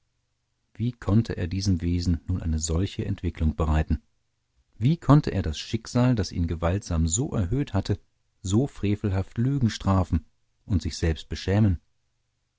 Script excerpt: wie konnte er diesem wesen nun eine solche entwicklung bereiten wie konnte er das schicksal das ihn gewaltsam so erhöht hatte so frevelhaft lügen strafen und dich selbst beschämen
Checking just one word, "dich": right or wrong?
wrong